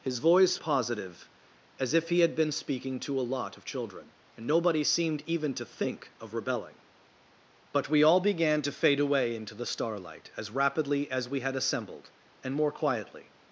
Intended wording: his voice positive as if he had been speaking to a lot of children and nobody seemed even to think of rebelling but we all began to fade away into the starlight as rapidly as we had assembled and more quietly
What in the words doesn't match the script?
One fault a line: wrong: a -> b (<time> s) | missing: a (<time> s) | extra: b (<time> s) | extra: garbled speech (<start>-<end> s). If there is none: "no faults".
no faults